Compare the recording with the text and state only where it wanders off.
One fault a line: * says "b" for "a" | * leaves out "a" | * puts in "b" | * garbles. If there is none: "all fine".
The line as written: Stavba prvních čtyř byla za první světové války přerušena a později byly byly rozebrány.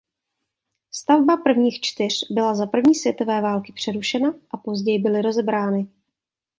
* leaves out "byly"